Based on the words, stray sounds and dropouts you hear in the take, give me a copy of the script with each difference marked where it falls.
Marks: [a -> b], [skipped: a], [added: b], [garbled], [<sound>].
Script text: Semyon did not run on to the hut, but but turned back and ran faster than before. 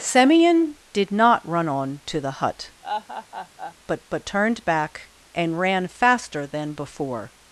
Semyon did not run on to the hut, [laugh] but but turned back and ran faster than before.